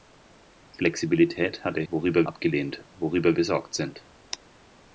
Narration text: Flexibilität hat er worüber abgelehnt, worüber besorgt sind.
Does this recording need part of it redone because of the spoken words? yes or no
no